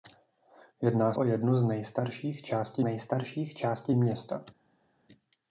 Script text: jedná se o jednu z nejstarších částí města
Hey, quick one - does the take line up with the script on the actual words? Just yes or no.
no